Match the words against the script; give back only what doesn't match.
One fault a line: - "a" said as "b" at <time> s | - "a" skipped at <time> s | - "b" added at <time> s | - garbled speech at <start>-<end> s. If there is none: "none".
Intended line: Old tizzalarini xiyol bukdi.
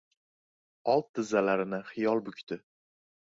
none